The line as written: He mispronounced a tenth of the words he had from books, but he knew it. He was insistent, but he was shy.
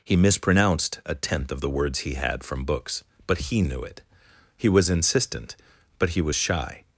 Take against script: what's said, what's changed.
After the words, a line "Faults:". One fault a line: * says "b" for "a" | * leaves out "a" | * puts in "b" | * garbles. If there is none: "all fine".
He mispronounced a tenth of the words he had from books, but he knew it. He was insistent, but he was shy.
Faults:
all fine